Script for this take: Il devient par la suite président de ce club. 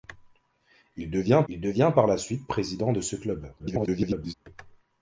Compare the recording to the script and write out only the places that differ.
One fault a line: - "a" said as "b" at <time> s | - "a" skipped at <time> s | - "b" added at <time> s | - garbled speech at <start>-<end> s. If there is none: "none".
- "il devient" added at 1.5 s
- garbled speech at 3.6-4.3 s